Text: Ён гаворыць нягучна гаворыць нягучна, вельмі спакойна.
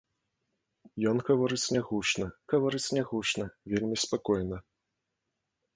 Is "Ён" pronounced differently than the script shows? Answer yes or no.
no